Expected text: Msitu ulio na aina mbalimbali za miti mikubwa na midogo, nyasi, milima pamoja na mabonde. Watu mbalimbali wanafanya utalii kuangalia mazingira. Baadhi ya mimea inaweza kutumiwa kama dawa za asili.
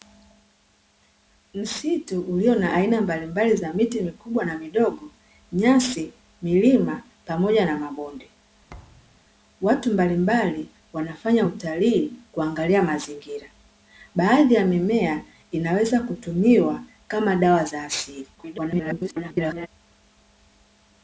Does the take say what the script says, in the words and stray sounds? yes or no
no